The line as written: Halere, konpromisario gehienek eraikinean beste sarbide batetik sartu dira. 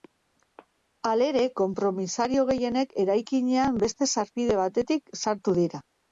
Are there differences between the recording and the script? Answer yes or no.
no